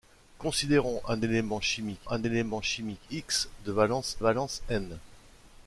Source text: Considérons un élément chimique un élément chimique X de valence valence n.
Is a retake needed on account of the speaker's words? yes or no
no